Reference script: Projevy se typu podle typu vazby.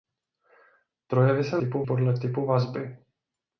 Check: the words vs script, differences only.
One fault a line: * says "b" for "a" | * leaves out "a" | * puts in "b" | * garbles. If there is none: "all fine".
all fine